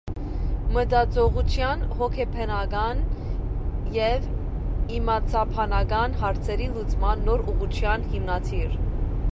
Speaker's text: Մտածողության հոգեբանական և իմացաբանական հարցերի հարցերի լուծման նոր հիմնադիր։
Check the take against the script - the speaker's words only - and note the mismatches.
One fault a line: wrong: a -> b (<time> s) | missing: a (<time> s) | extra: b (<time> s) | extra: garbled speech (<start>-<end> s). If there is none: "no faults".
missing: հարցերի (6.7 s)
extra: ուղղության (7.5 s)